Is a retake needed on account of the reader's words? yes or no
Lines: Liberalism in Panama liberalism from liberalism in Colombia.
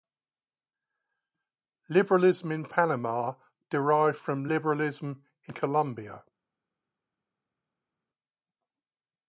yes